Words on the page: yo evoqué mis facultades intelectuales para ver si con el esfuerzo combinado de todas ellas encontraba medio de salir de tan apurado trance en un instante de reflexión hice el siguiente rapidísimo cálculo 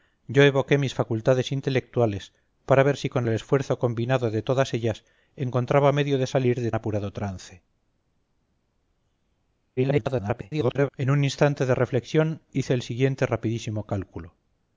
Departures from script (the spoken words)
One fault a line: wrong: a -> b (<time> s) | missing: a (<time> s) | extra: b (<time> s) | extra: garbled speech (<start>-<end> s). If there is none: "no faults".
missing: tan (6.7 s)
extra: garbled speech (9.8-10.9 s)